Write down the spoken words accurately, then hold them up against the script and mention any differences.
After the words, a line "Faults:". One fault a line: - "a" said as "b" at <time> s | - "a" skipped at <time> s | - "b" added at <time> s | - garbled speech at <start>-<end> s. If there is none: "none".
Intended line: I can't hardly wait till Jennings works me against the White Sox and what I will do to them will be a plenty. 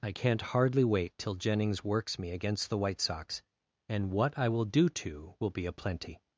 I can't hardly wait till Jennings works me against the White Sox and what I will do to will be a plenty.
Faults:
- "them" skipped at 5.3 s